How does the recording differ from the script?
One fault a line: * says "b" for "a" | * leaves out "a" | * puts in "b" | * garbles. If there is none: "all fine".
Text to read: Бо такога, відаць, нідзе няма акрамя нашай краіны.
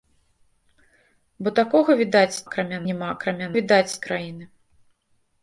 * says "акрамя" for "нідзе"
* says "відаць" for "нашай"